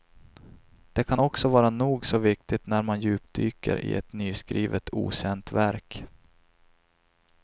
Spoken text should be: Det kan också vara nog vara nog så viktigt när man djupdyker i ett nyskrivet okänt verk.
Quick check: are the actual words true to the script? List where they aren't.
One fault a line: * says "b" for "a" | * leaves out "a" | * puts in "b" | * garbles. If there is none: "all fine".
* leaves out "vara nog"